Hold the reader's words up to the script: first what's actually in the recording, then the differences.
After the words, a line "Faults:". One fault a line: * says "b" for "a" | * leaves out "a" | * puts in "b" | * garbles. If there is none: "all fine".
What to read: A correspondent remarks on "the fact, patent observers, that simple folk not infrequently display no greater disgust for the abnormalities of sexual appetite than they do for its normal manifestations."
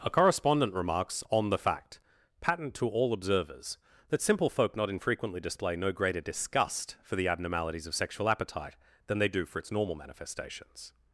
A correspondent remarks on "the fact, patent to all observers, that simple folk not infrequently display no greater disgust for the abnormalities of sexual appetite than they do for its normal manifestations."
Faults:
* puts in "to all"